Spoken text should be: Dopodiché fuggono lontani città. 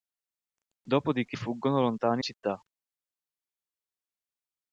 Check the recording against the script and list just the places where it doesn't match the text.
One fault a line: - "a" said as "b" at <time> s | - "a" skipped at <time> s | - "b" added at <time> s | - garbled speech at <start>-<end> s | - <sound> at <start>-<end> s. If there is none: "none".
none